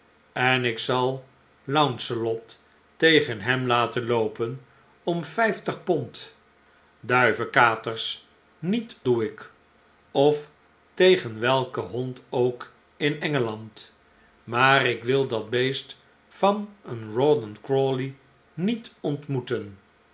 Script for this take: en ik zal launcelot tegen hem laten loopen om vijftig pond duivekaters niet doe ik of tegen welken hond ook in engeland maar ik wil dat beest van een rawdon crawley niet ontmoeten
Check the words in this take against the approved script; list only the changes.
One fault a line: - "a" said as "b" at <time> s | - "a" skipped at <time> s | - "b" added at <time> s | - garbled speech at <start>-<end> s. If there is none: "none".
none